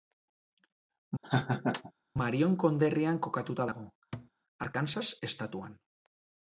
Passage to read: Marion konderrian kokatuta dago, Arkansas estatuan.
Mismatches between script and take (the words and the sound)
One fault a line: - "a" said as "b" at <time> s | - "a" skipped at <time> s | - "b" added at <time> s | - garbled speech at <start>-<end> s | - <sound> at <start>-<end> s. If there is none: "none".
- laugh at 1.2-1.9 s
- thud at 4.1-4.3 s